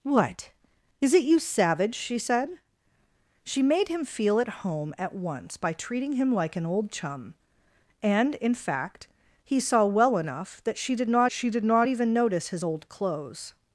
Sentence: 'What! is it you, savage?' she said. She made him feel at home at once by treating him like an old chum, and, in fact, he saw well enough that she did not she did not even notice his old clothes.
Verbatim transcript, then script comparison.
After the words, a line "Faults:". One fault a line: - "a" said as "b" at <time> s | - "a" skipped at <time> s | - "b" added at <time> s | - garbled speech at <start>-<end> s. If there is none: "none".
'What! is it you, savage?' she said. She made him feel at home at once by treating him like an old chum, and, in fact, he saw well enough that she did not she did not even notice his old clothes.
Faults:
none